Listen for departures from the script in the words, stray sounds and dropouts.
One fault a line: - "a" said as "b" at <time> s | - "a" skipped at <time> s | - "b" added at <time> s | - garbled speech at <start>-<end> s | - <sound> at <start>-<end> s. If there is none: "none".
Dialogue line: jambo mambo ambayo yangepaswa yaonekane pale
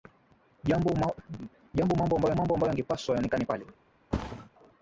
- "mambo ambayo" added at 2.4 s
- thud at 4.1-4.5 s